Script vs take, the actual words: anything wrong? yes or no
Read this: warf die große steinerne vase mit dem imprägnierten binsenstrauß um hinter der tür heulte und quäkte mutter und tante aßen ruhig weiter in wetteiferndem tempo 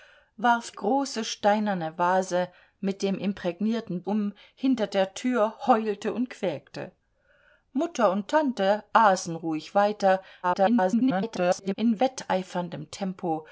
yes